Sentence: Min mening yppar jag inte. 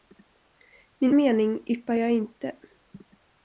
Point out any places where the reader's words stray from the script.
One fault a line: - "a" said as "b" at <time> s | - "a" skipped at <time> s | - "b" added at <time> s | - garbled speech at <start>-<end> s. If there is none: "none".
none